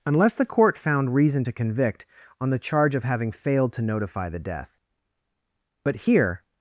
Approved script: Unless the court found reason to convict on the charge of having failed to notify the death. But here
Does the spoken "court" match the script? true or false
true